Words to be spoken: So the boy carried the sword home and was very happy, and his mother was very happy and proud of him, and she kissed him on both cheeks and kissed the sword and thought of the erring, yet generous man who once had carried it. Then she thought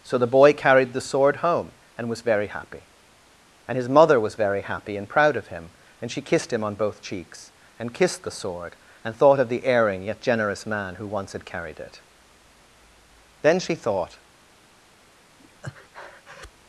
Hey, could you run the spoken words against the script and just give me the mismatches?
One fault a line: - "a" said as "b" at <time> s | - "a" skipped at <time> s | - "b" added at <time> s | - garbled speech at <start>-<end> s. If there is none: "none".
none